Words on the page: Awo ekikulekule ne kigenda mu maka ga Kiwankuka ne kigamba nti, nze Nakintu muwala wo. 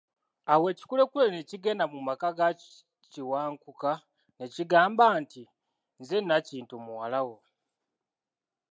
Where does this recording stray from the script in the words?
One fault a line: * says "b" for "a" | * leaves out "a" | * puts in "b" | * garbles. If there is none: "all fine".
all fine